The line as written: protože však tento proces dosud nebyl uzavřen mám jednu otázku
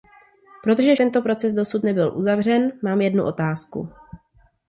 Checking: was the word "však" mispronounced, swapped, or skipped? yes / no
yes